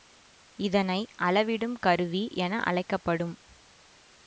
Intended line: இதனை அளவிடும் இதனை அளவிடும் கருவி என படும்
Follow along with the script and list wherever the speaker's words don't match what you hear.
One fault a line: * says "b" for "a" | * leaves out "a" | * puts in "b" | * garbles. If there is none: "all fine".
* leaves out "இதனை அளவிடும்"
* puts in "அழைக்க"